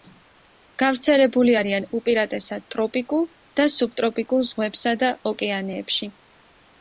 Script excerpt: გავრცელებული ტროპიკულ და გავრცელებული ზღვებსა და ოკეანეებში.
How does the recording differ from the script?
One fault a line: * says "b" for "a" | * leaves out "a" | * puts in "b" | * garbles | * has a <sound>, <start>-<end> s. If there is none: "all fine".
* puts in "არიან უპირატესად"
* says "სუბტროპიკულ" for "გავრცელებული"